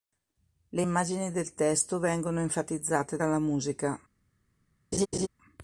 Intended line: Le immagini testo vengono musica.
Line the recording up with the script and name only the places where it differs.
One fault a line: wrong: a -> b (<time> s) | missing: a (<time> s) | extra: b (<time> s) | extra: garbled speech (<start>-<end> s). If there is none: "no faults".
extra: del (1.3 s)
extra: enfatizzate dalla (2.4 s)